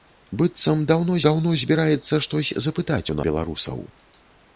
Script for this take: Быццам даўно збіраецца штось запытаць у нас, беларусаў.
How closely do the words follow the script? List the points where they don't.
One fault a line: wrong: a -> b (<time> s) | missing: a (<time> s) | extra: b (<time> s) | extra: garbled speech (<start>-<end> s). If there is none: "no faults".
extra: даўно (1.3 s)
missing: нас (3.2 s)